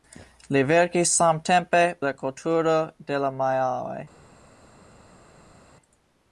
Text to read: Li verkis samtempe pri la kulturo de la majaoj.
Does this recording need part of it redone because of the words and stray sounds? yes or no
yes